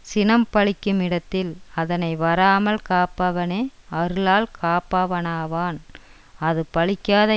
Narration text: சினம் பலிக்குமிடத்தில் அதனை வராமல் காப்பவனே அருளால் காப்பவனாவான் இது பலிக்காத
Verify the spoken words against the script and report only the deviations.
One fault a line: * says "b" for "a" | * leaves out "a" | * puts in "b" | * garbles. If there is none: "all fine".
* says "அது" for "இது"